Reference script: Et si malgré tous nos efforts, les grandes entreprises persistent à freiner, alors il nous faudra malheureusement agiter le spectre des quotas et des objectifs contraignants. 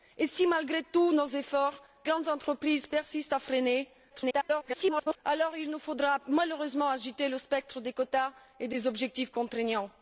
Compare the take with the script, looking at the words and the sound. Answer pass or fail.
fail